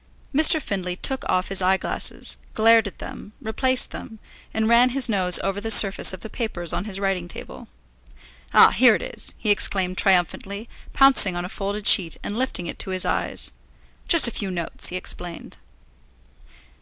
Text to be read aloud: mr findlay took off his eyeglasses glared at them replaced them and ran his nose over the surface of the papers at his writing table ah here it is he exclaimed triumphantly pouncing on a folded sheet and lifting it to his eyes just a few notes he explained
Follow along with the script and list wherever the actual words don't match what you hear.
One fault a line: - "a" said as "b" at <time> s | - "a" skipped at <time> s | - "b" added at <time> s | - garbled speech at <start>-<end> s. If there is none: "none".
- "at" said as "on" at 6.7 s